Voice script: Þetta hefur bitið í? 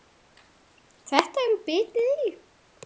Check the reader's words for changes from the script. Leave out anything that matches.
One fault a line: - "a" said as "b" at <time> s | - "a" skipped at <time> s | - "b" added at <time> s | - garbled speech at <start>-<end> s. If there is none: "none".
none